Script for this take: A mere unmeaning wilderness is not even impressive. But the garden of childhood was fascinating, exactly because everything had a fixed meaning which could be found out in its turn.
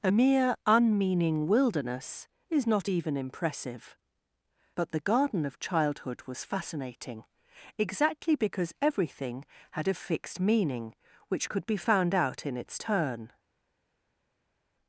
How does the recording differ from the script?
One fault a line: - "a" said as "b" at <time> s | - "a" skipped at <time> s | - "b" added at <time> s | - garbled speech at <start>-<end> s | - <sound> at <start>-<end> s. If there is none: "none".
none